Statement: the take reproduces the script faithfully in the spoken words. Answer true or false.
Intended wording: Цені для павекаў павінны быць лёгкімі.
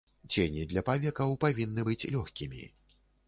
true